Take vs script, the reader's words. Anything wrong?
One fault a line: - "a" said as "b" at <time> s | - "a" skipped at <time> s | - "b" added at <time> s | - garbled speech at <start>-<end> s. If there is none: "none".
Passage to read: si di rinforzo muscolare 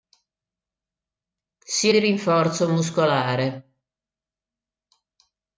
none